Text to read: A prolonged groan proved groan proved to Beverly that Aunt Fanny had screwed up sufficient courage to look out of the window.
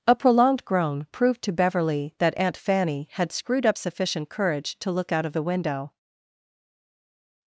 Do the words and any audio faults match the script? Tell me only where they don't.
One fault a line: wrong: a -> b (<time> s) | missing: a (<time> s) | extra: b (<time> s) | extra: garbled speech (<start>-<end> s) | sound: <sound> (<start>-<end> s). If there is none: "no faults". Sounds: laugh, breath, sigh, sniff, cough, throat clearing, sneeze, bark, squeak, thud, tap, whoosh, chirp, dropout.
missing: groan proved (1.4 s)